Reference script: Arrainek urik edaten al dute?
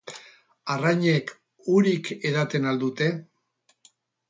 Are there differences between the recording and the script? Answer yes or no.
no